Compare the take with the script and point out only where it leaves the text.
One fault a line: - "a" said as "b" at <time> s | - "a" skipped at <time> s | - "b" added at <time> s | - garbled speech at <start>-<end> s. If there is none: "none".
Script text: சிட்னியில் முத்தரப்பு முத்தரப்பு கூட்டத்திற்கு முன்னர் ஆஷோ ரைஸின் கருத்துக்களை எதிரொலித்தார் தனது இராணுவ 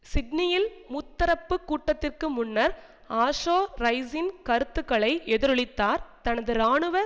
- "முத்தரப்பு" skipped at 1.6 s